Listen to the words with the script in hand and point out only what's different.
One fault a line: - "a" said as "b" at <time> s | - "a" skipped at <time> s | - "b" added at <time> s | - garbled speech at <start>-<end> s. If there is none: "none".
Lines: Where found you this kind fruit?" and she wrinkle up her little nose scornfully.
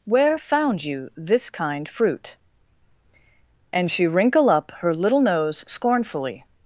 none